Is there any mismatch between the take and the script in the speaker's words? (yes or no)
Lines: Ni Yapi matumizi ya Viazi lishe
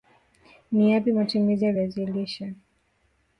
no